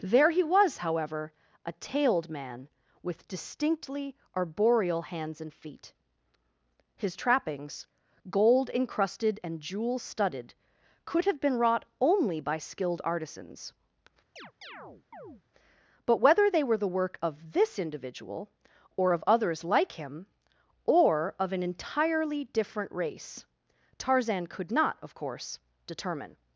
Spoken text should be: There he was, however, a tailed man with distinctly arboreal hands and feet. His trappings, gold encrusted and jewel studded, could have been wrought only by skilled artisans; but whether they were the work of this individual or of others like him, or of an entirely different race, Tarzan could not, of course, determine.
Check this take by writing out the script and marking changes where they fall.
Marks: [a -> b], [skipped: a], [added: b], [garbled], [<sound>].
There he was, however, a tailed man with distinctly arboreal hands and feet. His trappings, gold encrusted and jewel studded, could have been wrought only by skilled artisans; [chirp] but whether they were the work of this individual or of others like him, or of an entirely different race, Tarzan could not, of course, determine.